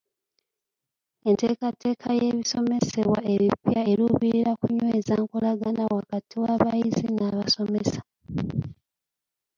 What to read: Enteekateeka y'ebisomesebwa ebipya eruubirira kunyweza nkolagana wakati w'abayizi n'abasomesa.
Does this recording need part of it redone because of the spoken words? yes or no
no